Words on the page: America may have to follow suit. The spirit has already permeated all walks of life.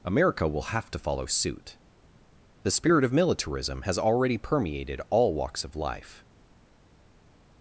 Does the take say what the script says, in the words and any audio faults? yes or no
no